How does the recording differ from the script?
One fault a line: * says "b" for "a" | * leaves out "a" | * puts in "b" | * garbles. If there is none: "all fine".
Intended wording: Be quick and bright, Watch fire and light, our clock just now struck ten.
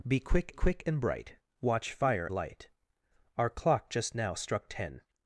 * puts in "quick"
* leaves out "and"